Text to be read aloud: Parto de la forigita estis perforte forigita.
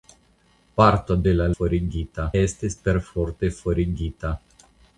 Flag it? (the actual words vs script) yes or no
no